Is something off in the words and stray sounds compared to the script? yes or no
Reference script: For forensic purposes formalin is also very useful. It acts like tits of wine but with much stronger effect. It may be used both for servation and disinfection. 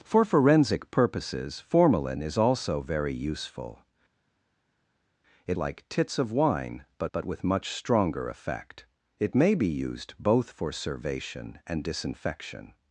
yes